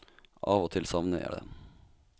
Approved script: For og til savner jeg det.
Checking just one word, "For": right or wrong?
wrong